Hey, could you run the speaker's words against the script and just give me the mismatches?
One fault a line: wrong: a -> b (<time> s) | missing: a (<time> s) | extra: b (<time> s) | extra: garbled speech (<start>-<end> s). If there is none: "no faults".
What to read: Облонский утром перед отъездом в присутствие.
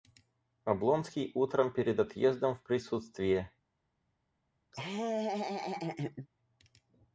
no faults